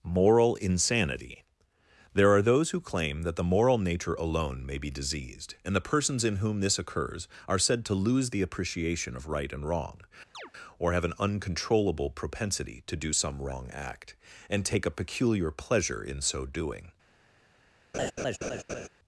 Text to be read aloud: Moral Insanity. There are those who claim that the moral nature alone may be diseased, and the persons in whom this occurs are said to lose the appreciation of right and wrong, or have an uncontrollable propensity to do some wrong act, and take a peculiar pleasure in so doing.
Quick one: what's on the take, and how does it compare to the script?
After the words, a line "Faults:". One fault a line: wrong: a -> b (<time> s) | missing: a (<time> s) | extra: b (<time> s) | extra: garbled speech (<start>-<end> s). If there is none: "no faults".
Moral Insanity. There are those who claim that the moral nature alone may be diseased, and the persons in whom this occurs are said to lose the appreciation of right and wrong, or have an uncontrollable propensity to do some wrong act, and take a peculiar pleasure in so doing.
Faults:
no faults